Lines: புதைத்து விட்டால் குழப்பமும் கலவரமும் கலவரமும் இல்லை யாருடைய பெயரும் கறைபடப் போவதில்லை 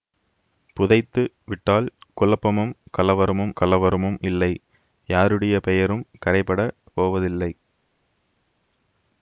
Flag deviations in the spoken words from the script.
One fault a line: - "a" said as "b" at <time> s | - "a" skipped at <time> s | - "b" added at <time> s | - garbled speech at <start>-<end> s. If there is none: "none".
none